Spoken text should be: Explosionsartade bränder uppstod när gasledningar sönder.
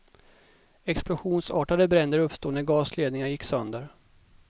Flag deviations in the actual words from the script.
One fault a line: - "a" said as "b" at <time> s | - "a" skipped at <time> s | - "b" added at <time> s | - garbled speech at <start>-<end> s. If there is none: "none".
- "gick" added at 3.3 s